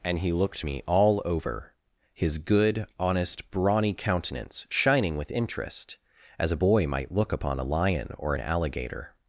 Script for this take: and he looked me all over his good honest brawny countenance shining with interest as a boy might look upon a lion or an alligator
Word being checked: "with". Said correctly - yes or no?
yes